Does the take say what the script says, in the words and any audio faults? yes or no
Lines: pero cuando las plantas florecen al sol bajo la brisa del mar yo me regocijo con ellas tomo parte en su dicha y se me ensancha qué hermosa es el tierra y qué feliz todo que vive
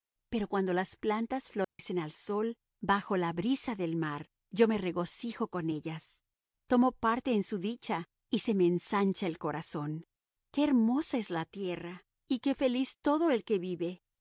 no